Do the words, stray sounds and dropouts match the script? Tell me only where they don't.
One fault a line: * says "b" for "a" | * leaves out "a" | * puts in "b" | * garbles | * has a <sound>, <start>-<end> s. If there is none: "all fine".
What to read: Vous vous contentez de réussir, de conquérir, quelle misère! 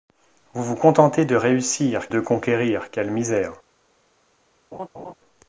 * has a laugh, 4.7-5.1 s